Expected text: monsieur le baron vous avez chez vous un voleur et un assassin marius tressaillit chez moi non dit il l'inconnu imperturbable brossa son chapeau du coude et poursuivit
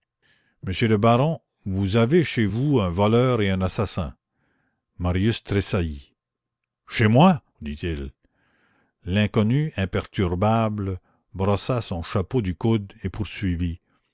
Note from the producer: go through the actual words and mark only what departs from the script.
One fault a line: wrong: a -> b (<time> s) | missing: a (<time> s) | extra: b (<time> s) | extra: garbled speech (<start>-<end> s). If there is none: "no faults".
missing: non (7.4 s)